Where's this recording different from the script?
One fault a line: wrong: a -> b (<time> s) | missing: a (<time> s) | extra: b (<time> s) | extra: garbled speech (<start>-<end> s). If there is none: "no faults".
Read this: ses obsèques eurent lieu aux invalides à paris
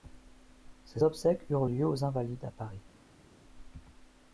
no faults